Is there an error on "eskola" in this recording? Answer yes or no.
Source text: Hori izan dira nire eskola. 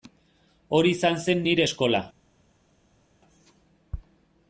no